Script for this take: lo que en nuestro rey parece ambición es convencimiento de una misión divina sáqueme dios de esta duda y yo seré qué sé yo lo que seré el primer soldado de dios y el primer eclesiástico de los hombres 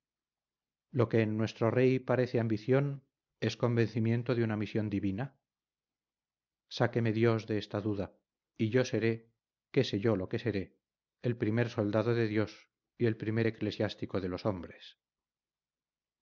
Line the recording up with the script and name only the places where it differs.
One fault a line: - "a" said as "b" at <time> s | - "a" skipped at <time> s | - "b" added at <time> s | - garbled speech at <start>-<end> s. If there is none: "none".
none